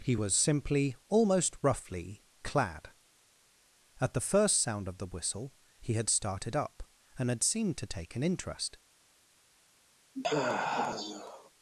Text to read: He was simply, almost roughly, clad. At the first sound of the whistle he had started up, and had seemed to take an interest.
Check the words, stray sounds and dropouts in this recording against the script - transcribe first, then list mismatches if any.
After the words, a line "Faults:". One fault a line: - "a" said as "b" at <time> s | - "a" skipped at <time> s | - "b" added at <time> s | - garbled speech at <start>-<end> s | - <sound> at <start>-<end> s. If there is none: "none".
He was simply, almost roughly, clad. At the first sound of the whistle he had started up, and had seemed to take an interest.
Faults:
- sigh at 10.1-11.5 s